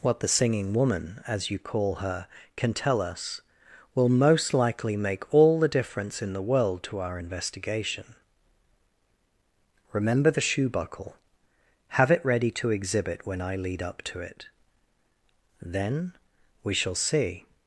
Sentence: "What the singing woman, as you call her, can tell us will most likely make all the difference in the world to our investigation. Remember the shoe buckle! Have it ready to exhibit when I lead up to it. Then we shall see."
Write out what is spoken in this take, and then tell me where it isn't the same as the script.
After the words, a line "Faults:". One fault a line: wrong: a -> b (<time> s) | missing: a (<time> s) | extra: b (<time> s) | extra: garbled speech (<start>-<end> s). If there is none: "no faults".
"What the singing woman, as you call her, can tell us will most likely make all the difference in the world to our investigation. Remember the shoe buckle! Have it ready to exhibit when I lead up to it. Then we shall see."
Faults:
no faults